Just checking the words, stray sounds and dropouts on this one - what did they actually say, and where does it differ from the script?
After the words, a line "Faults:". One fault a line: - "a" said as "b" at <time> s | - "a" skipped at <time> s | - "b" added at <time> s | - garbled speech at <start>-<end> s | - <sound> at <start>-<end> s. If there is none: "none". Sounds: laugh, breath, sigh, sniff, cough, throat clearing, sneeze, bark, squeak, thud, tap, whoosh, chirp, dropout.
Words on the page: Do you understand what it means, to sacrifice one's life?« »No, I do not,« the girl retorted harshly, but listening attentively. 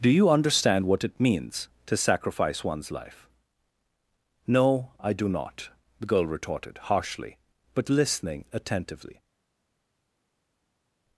Do you understand what it means, to sacrifice one's life?« »No, I do not,« the girl retorted harshly, but listening attentively.
Faults:
none